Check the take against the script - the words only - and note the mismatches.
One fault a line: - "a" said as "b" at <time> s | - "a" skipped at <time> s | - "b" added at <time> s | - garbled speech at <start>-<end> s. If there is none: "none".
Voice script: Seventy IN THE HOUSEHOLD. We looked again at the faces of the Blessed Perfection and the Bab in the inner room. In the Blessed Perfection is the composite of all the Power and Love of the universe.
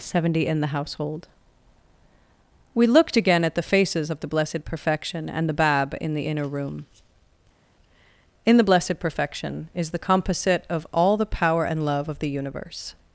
none